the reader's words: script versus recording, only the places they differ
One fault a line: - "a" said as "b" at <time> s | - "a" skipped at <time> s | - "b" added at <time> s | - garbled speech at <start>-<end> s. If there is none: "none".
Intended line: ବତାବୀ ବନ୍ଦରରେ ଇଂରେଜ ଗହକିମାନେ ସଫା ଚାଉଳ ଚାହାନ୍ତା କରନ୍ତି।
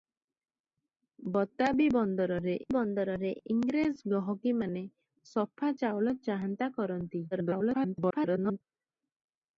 - "ବନ୍ଦରରେ" added at 2.7 s
- garbled speech at 7.3-8.6 s